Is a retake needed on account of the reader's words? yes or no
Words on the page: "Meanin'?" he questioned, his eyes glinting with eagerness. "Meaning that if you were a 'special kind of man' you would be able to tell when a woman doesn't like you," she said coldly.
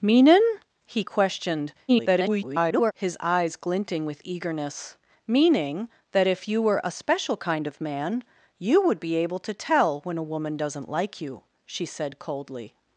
yes